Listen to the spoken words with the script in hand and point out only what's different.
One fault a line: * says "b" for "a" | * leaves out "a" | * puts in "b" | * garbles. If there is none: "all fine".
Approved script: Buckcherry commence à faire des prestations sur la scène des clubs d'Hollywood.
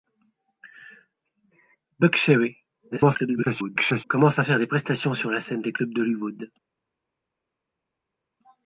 * garbles